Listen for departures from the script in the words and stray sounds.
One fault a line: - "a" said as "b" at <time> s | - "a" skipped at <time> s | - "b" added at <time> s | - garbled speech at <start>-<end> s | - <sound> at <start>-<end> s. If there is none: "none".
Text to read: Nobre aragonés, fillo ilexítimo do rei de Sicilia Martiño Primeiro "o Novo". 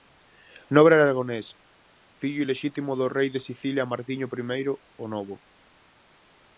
none